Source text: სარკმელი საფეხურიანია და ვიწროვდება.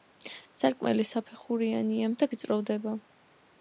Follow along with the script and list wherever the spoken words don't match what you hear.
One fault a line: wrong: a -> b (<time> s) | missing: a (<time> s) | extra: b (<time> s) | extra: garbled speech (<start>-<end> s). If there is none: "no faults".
no faults